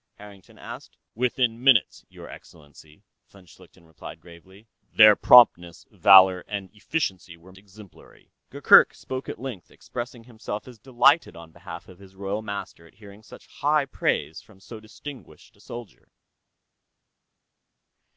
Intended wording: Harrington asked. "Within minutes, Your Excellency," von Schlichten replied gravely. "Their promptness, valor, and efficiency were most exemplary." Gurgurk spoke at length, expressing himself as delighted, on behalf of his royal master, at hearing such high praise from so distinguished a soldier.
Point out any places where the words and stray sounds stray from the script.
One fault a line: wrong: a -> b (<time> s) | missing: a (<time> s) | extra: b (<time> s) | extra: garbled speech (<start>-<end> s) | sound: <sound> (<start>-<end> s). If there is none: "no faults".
missing: most (7.5 s)